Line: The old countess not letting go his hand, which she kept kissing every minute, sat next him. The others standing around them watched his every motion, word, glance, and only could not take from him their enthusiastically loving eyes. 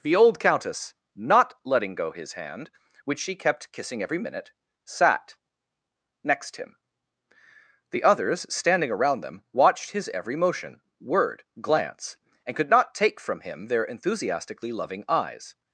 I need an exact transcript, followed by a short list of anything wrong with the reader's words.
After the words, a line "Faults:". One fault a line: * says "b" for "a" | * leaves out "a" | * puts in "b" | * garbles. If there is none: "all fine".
The old countess not letting go his hand, which she kept kissing every minute, sat next him. The others standing around them watched his every motion, word, glance, and could not take from him their enthusiastically loving eyes.
Faults:
* leaves out "only"